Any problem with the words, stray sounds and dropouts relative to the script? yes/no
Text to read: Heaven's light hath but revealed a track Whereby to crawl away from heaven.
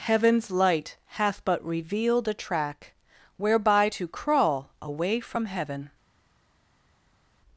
no